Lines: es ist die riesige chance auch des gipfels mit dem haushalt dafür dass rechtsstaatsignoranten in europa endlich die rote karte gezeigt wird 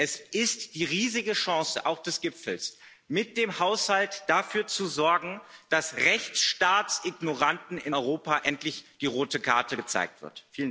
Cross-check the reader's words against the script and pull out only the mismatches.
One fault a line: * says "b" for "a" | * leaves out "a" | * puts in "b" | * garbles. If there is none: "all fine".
* puts in "zu sorgen"